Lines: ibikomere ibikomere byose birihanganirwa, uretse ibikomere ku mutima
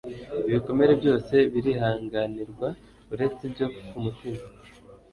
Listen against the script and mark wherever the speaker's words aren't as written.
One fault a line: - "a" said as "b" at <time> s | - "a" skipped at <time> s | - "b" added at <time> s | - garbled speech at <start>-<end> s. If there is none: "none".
- "ibikomere" skipped at 0.9 s
- "ibikomere" said as "ibyo" at 3.5 s